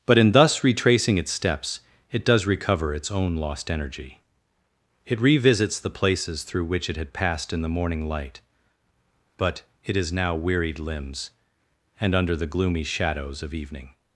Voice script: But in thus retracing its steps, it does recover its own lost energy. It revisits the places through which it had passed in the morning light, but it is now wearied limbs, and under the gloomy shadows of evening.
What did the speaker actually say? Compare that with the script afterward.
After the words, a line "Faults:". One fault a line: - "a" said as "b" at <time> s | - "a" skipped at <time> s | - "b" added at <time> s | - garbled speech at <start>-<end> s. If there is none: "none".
But in thus retracing its steps, it does recover its own lost energy. It revisits the places through which it had passed in the morning light, but it is now wearied limbs, and under the gloomy shadows of evening.
Faults:
none